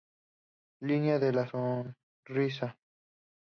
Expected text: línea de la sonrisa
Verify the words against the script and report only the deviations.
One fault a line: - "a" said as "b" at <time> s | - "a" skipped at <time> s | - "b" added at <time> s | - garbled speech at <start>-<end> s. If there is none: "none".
none